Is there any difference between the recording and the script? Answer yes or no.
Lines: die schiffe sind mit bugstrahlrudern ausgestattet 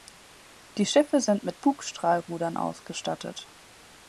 no